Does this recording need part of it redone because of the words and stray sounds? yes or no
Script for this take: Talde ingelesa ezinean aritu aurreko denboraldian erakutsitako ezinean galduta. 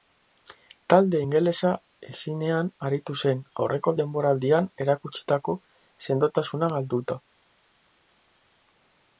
yes